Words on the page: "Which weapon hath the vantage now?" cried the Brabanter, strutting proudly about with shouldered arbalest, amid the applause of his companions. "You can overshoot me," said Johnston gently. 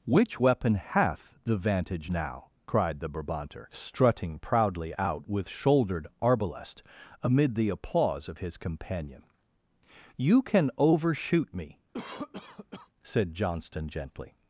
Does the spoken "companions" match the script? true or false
false